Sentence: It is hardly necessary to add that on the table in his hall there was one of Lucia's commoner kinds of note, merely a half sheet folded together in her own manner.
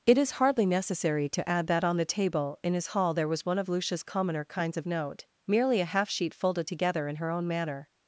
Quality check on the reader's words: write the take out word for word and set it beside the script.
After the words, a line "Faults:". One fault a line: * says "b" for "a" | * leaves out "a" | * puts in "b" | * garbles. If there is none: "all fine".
It is hardly necessary to add that on the table in his hall there was one of Lucia's commoner kinds of note, merely a half sheet folded together in her own manner.
Faults:
all fine